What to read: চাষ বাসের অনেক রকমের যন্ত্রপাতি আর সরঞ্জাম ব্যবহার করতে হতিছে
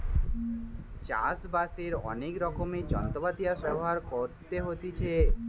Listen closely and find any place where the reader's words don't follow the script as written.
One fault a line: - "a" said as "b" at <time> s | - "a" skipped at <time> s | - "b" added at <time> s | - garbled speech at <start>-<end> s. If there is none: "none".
- "সরঞ্জাম" skipped at 3.6 s